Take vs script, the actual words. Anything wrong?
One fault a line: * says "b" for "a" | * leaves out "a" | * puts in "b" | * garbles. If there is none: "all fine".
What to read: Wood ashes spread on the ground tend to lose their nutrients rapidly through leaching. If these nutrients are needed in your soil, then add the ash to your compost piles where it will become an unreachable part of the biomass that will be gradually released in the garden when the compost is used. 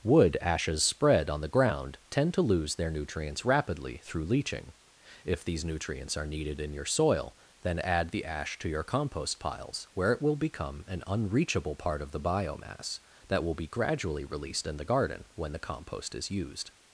all fine